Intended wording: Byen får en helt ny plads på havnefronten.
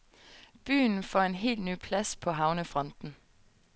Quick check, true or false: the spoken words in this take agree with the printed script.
true